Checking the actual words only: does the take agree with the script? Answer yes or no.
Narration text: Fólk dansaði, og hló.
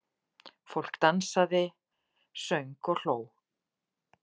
no